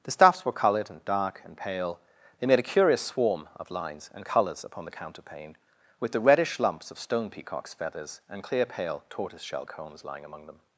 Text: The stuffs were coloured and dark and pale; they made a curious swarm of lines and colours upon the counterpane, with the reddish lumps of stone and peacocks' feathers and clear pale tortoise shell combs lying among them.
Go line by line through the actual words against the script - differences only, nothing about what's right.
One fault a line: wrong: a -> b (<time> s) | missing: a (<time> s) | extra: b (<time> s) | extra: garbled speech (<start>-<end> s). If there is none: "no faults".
missing: and (7.3 s)